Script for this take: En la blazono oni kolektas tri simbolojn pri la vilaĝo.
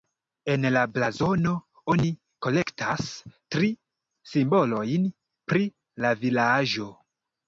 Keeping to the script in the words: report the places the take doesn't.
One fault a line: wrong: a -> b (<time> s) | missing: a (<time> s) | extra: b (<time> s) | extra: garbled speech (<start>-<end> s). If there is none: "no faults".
no faults